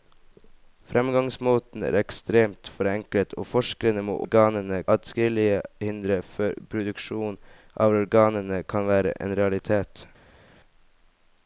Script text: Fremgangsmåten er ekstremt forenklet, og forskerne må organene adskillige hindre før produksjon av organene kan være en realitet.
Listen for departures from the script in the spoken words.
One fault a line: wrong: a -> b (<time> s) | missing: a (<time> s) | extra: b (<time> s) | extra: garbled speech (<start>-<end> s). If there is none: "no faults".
no faults